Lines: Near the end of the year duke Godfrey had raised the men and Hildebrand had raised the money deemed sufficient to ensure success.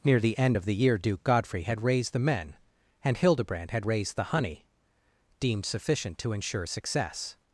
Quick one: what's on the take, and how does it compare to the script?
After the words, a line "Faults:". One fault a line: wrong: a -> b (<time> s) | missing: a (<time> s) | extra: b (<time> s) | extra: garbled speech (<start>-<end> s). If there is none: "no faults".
Near the end of the year duke Godfrey had raised the men and Hildebrand had raised the honey deemed sufficient to ensure success.
Faults:
wrong: money -> honey (4.2 s)